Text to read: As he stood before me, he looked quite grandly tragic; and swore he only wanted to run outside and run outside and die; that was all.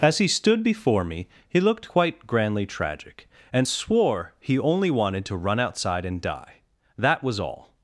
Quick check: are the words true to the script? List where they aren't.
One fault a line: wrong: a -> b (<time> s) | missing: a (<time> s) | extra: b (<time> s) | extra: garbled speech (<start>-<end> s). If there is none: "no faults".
missing: run outside and (6.2 s)